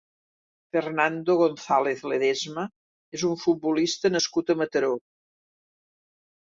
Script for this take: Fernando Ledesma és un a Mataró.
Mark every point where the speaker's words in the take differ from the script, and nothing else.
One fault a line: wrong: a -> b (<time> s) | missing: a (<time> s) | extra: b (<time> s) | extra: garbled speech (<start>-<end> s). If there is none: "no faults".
extra: González (1.4 s)
extra: futbolista nascut (3.5 s)